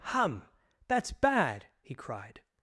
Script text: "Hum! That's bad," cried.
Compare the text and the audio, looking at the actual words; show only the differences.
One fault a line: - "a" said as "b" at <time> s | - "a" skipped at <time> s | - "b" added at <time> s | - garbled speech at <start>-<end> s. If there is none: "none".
- "he" added at 1.8 s